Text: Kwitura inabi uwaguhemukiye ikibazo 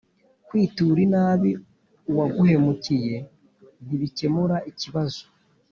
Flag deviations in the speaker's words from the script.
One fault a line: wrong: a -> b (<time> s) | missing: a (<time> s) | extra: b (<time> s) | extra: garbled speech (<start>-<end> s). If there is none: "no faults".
extra: ntibikemura (3.9 s)